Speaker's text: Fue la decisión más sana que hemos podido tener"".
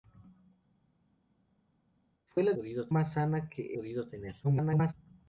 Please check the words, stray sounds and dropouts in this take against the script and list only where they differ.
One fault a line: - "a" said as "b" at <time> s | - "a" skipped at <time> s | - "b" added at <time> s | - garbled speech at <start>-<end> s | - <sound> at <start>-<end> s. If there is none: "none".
- "decisión" said as "podido" at 2.5 s
- "hemos" skipped at 3.8 s
- garbled speech at 4.4-4.9 s